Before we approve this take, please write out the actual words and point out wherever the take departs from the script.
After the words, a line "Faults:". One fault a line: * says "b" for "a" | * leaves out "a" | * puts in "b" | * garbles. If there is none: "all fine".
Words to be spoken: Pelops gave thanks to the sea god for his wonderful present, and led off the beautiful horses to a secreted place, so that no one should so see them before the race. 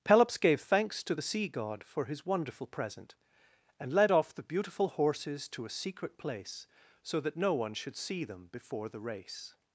Pelops gave thanks to the sea god for his wonderful present, and led off the beautiful horses to a secret place, so that no one should see them before the race.
Faults:
* says "secret" for "secreted"
* leaves out "so"